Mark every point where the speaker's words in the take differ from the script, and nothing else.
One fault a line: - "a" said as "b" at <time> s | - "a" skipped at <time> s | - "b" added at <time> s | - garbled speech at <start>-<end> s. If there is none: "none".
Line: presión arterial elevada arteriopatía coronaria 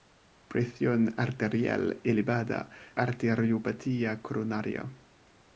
none